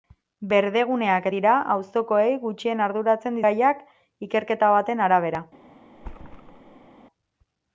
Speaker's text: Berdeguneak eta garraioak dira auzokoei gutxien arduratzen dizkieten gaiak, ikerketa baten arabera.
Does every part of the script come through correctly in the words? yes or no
no